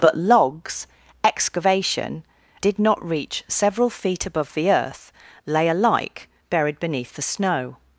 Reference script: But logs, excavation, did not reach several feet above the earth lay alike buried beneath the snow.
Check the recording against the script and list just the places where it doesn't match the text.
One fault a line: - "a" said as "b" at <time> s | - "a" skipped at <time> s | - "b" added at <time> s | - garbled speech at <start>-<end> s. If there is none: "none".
none